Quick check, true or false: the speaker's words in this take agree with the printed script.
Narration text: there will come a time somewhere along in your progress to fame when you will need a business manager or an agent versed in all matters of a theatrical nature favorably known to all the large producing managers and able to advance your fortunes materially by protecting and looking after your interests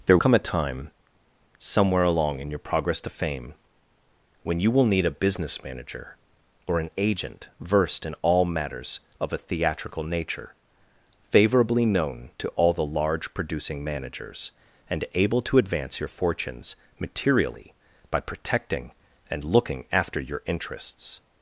false